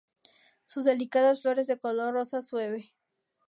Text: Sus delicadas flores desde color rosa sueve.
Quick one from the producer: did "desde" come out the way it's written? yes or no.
no